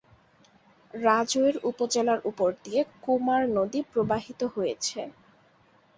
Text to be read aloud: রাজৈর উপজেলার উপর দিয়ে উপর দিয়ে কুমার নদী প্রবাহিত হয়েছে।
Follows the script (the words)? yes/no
no